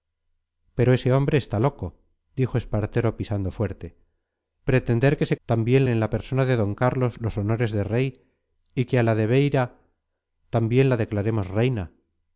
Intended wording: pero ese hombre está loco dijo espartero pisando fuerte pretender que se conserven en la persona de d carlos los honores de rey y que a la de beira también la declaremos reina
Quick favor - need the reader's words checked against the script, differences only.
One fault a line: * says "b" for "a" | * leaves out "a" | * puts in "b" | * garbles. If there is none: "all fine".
* says "también" for "conserven"